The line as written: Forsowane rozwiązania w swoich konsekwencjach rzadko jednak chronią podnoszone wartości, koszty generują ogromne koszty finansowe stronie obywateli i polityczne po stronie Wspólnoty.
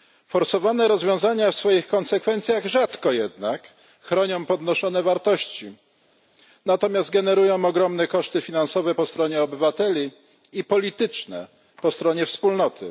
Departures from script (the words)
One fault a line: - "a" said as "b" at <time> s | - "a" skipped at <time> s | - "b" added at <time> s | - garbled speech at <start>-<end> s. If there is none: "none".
- "koszty" said as "natomiast" at 6.6 s
- "po" added at 8.9 s